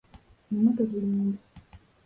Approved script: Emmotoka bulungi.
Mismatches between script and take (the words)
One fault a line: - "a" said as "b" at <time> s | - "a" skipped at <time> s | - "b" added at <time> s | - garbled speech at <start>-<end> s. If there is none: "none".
none